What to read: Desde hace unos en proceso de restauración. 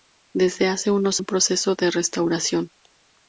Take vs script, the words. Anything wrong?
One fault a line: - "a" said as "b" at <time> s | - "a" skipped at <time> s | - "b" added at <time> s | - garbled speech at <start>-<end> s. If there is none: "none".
none